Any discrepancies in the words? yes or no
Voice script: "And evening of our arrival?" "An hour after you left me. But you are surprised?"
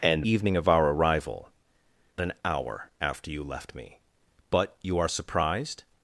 no